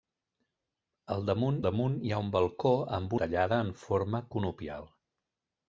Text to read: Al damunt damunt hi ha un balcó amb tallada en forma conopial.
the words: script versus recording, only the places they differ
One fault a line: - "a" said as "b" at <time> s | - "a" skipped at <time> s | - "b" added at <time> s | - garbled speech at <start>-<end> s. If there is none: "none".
none